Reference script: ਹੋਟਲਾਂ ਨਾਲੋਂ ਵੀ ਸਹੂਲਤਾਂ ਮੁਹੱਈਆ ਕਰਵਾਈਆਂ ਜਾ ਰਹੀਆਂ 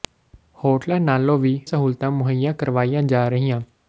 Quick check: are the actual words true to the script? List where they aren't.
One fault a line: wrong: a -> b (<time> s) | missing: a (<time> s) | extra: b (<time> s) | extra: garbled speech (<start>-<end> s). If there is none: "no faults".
no faults